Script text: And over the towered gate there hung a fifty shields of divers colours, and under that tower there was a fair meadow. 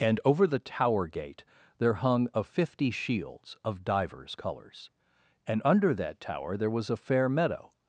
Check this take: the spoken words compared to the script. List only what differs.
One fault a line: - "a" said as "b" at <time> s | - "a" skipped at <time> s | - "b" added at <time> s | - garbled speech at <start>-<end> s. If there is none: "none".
- "towered" said as "tower" at 0.6 s